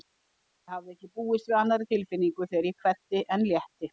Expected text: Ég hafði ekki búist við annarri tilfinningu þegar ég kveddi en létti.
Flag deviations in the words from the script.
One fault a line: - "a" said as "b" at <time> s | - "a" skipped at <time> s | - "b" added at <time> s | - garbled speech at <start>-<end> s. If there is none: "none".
none